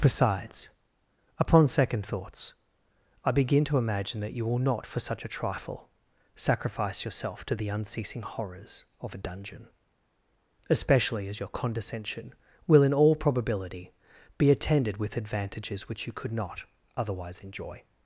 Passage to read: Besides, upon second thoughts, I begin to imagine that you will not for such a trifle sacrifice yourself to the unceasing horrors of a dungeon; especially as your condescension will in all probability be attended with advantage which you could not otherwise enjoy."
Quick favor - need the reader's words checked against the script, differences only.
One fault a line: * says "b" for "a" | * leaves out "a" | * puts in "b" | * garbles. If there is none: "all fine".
* says "advantages" for "advantage"